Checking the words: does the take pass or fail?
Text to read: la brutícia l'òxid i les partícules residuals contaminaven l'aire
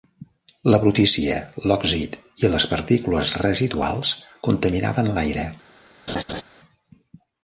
pass